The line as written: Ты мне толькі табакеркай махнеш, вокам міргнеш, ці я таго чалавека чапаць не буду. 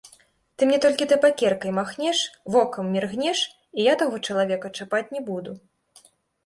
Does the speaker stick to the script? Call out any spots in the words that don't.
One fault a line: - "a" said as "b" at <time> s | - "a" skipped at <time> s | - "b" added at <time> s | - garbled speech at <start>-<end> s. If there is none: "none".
- "ці" said as "і" at 3.8 s